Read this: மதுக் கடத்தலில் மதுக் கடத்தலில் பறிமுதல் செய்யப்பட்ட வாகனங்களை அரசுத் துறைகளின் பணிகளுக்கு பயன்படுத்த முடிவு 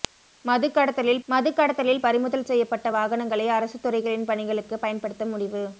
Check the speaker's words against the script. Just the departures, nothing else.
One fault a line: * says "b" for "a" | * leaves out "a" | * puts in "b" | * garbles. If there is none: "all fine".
all fine